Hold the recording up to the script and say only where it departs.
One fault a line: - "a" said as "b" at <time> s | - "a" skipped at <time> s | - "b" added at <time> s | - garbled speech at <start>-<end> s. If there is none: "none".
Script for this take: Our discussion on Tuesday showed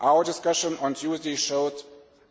none